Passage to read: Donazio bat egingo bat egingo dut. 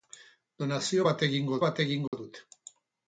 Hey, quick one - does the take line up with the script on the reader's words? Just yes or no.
yes